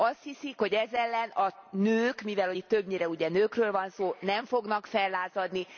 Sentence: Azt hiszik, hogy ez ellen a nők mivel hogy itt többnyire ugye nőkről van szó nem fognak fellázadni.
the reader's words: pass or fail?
pass